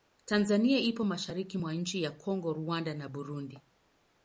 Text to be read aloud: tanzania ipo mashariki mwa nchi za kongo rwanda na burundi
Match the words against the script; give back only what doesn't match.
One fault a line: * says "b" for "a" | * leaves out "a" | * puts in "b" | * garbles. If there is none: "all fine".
all fine